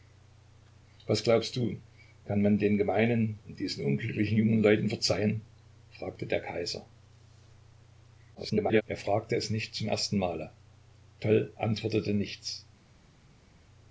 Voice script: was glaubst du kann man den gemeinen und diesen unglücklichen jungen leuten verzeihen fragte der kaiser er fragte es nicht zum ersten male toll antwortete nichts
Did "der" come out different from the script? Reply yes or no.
no